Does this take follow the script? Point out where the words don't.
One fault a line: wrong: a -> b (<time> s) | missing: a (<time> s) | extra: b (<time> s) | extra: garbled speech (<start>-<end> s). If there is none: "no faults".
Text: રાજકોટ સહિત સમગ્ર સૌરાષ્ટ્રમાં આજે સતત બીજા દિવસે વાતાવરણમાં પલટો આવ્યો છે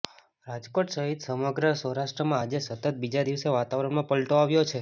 no faults